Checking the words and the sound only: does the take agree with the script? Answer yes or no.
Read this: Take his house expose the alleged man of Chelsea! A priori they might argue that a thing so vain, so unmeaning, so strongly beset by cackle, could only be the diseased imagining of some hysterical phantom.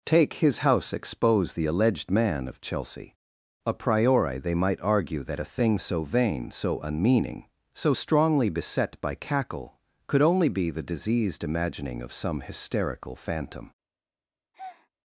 no